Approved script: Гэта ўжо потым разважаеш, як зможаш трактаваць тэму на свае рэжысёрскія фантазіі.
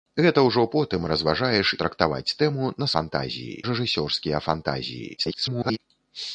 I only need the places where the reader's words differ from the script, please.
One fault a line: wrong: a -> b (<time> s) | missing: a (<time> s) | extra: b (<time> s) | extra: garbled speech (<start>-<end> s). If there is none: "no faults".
missing: як зможаш (1.7 s)
wrong: свае -> фантазіі (3.0 s)
extra: garbled speech (5.2-5.8 s)